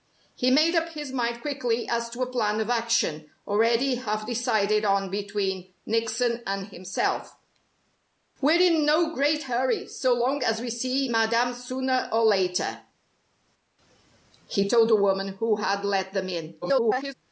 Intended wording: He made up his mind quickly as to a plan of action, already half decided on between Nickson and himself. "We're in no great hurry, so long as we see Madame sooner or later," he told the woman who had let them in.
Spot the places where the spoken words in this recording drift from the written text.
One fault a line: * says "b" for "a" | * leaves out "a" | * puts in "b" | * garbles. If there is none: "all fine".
* garbles